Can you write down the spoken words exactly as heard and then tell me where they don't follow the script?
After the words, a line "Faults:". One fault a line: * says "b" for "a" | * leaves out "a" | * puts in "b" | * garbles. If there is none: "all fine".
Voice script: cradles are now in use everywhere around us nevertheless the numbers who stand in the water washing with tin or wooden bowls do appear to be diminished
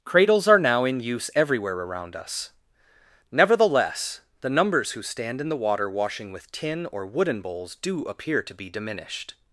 cradles are now in use everywhere around us nevertheless the numbers who stand in the water washing with tin or wooden bowls do appear to be diminished
Faults:
all fine